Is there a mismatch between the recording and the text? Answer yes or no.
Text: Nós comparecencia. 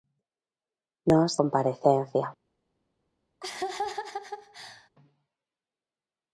no